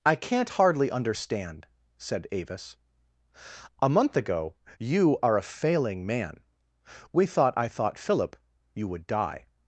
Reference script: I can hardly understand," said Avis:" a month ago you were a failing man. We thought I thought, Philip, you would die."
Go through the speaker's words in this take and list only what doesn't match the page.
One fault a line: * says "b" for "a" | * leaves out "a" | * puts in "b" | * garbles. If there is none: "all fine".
* says "can't" for "can"
* says "are" for "were"